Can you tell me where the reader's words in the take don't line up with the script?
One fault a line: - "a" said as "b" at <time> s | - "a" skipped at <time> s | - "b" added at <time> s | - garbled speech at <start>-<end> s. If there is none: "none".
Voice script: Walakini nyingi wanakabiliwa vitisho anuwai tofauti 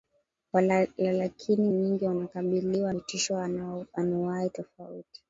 none